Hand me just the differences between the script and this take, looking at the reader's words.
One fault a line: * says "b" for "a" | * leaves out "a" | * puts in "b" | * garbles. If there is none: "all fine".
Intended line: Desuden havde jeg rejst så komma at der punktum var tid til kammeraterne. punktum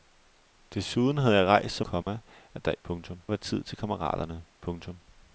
all fine